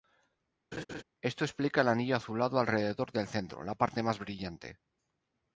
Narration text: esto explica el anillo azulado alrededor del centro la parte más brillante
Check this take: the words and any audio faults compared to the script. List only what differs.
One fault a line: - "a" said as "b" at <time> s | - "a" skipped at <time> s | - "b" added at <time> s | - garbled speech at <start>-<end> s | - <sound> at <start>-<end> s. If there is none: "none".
- laugh at 0.7-1.0 s